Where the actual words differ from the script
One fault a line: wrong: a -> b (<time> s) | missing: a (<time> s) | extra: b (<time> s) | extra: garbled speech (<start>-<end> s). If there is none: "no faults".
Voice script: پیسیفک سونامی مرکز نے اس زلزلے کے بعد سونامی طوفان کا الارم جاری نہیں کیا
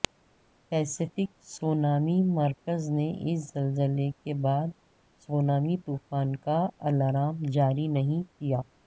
no faults